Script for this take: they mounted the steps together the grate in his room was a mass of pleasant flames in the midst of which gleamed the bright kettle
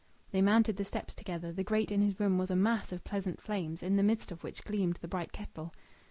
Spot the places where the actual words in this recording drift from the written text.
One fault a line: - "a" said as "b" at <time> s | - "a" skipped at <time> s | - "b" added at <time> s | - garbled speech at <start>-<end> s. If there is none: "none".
none